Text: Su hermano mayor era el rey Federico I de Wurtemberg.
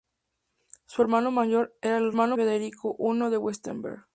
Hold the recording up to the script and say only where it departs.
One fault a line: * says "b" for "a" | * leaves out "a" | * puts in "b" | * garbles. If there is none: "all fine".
* says "hermano" for "rey"